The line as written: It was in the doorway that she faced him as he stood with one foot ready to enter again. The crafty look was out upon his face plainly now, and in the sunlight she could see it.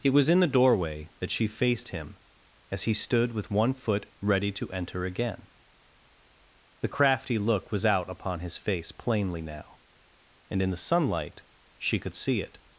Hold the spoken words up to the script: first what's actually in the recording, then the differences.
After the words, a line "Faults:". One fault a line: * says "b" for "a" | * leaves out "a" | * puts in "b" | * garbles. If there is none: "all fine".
It was in the doorway that she faced him as he stood with one foot ready to enter again. The crafty look was out upon his face plainly now, and in the sunlight she could see it.
Faults:
all fine